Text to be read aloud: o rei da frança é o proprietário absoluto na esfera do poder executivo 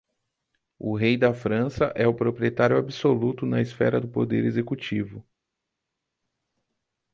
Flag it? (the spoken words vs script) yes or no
no